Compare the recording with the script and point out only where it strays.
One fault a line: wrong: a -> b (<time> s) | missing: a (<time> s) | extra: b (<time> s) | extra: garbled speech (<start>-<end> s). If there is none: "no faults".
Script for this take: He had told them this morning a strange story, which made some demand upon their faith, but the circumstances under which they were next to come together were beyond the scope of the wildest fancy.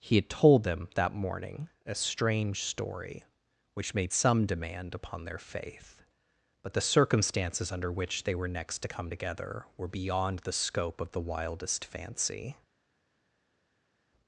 wrong: this -> that (0.9 s)